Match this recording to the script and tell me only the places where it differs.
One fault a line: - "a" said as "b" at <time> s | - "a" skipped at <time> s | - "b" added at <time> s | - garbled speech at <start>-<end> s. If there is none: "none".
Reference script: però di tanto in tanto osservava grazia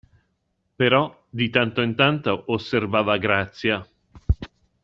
none